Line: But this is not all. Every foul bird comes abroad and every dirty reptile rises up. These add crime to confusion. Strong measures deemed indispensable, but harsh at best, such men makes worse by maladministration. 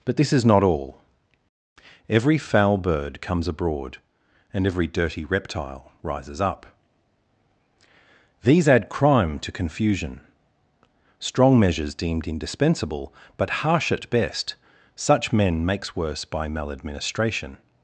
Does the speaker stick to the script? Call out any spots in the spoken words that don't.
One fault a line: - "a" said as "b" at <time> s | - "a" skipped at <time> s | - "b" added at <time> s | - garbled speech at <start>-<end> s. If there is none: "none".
none